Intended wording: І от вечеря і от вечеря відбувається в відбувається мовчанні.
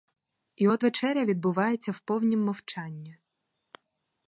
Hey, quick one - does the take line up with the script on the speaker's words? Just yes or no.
no